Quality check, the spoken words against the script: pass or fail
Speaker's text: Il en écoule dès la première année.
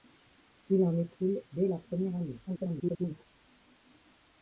fail